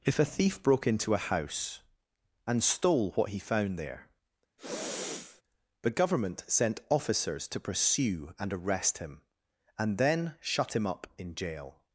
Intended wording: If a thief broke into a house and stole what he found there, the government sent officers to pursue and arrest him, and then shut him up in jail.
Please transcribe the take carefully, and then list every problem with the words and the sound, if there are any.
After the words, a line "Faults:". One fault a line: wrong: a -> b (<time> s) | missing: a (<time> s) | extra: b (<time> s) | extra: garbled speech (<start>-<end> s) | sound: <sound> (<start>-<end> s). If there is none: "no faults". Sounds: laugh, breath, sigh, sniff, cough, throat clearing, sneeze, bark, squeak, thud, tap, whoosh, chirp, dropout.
If a thief broke into a house and stole what he found there, the government sent officers to pursue and arrest him, and then shut him up in jail.
Faults:
sound: sniff (4.6-5.4 s)